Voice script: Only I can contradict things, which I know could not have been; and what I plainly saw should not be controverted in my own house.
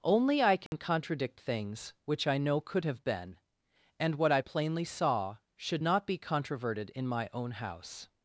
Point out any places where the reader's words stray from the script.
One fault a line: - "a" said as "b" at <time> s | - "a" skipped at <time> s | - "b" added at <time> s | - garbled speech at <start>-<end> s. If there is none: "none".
- "not" skipped at 2.9 s